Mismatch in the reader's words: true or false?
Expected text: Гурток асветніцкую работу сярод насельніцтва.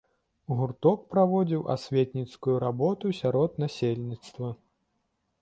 true